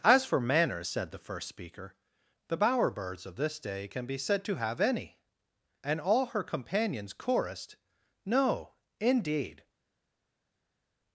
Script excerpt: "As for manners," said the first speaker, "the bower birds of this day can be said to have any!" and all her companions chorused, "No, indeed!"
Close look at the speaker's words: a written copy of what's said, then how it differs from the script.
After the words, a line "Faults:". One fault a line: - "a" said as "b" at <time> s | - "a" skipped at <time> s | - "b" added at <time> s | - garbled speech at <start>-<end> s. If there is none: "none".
"As for manners," said the first speaker, "the bower birds of this day can be said to have any!" and all her companions chorused, "No, indeed!"
Faults:
none